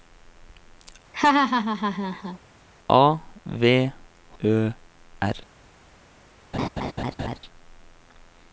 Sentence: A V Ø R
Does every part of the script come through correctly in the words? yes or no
yes